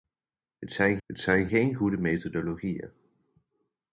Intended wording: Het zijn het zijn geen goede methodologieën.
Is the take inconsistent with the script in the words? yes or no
no